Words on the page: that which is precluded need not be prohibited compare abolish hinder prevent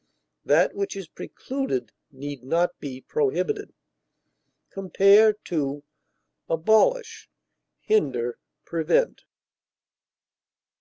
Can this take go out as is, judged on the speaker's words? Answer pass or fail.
pass